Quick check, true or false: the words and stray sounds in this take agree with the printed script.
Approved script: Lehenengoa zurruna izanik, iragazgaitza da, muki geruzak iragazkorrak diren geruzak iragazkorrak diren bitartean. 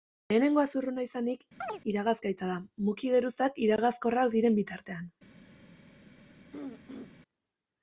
false